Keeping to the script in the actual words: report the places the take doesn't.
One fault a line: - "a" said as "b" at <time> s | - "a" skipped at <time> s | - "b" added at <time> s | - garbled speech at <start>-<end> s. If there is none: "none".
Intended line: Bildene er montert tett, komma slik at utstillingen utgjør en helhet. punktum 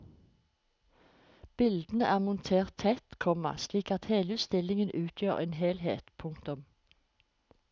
- "hele" added at 4.1 s